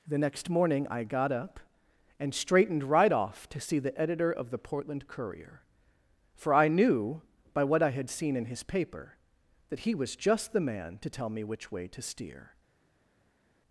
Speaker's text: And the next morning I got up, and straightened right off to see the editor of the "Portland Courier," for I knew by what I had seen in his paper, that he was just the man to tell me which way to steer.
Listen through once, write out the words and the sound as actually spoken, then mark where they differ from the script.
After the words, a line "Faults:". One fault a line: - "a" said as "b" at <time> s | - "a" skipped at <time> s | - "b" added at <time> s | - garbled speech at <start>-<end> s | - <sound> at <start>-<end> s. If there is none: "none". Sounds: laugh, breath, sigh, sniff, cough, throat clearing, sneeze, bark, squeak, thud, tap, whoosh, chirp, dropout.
the next morning I got up, and straightened right off to see the editor of the "Portland Courier," for I knew by what I had seen in his paper, that he was just the man to tell me which way to steer.
Faults:
- "And" skipped at 0.1 s